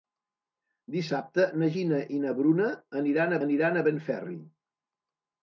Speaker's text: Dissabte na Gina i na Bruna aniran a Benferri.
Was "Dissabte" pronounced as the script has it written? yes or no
yes